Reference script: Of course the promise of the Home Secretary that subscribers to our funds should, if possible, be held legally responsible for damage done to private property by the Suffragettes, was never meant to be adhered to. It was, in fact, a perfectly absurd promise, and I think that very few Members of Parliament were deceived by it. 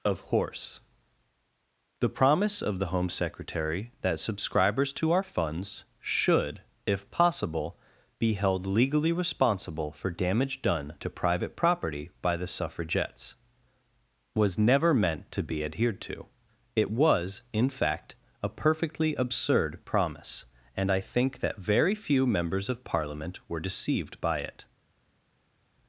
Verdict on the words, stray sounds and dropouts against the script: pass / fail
fail